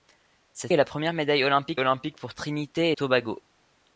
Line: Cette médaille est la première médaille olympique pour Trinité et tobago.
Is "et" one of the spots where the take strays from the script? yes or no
yes